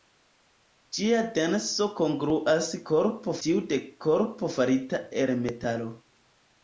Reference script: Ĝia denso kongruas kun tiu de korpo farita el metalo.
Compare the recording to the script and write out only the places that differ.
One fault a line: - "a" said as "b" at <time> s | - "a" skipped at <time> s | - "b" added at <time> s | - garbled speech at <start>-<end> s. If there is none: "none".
- "kun" said as "korpo" at 2.9 s